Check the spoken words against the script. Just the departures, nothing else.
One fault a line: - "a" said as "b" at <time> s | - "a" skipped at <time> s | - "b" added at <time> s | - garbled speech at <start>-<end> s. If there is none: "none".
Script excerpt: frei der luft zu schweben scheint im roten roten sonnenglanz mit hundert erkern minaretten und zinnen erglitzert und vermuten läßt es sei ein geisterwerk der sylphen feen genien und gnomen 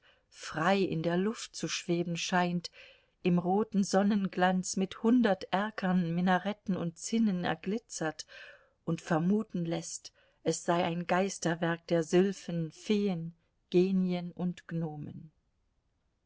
- "in" added at 0.8 s
- "roten" skipped at 3.8 s